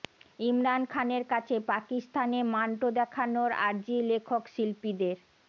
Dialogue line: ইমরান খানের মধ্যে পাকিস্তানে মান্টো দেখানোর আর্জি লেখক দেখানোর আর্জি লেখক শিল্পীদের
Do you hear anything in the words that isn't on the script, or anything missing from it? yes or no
yes